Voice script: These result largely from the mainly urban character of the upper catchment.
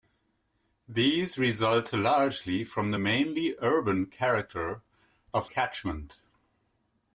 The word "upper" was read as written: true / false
false